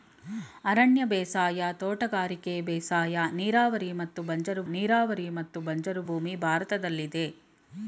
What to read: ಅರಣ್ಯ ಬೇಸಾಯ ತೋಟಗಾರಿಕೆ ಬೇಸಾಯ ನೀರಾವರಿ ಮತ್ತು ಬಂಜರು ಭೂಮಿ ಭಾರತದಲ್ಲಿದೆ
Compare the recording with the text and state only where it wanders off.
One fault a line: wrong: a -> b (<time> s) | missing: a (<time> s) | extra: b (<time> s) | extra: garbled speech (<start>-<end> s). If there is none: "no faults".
extra: ನೀರಾವರಿ ಮತ್ತು ಬಂಜರು (4.7 s)